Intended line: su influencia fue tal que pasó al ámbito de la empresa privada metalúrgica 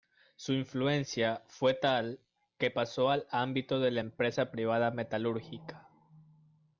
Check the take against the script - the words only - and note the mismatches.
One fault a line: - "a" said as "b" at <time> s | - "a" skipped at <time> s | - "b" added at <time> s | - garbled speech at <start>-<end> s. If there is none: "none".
none